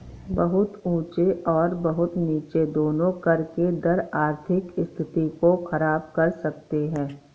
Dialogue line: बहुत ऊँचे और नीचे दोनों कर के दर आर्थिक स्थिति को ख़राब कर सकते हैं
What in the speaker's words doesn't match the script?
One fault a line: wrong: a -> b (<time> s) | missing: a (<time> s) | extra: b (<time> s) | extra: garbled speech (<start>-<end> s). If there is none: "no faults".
extra: बहुत (1.8 s)